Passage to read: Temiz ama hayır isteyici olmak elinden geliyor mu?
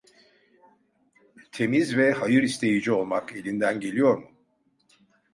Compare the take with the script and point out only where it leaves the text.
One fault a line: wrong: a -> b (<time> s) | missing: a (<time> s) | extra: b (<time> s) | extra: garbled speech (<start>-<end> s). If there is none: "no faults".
wrong: ama -> ve (2.0 s)